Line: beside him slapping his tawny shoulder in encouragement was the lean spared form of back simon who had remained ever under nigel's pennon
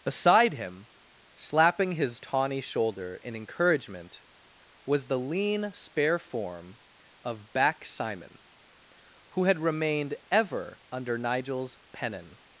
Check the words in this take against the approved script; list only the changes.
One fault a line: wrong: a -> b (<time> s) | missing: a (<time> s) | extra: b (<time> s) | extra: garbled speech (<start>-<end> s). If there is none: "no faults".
wrong: spared -> spare (5.7 s)